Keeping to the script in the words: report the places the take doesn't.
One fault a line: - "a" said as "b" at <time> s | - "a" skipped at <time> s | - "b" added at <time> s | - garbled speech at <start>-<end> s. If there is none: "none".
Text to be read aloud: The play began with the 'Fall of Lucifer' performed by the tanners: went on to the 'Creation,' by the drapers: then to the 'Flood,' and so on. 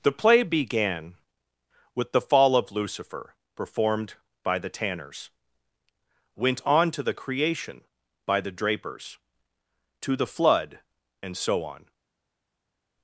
- "then" skipped at 9.2 s